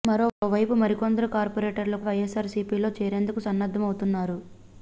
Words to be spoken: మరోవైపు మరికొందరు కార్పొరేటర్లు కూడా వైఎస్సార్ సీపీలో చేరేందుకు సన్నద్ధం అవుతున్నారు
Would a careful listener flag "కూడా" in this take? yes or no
yes